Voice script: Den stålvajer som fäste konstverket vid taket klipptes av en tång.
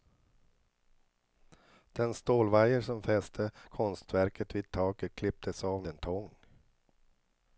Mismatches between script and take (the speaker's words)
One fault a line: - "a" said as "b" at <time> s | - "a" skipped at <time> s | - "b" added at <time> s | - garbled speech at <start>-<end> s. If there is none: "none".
none